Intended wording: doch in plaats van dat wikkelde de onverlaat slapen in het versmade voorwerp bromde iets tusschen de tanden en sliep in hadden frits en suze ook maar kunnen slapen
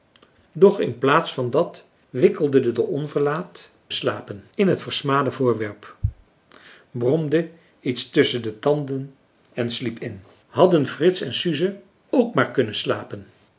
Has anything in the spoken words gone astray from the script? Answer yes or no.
no